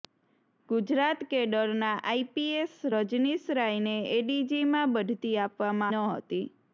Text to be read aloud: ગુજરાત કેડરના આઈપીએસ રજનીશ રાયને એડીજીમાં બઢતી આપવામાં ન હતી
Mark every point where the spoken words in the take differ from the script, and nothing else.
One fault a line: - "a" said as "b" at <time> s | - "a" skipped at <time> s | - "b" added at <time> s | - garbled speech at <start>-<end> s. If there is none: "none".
none